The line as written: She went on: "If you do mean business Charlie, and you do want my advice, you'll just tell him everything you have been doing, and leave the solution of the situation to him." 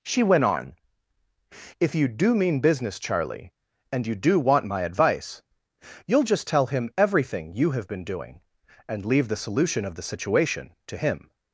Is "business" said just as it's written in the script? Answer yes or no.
yes